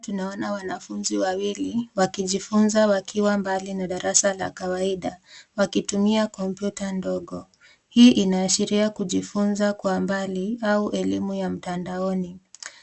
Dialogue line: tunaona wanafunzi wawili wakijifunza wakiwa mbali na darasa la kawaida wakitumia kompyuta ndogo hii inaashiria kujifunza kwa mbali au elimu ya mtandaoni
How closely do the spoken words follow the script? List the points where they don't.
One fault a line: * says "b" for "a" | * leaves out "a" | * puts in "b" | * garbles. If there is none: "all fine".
all fine